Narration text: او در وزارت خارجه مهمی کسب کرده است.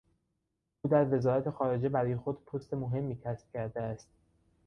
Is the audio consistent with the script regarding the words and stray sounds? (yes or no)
no